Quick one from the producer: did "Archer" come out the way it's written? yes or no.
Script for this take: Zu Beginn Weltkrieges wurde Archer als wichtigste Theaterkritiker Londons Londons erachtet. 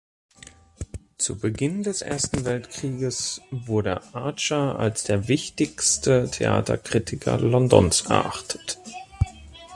yes